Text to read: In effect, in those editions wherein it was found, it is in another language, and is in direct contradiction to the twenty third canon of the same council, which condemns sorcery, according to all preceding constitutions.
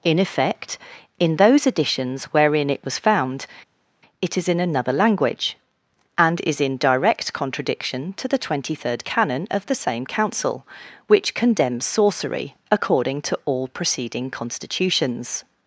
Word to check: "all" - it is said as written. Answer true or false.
true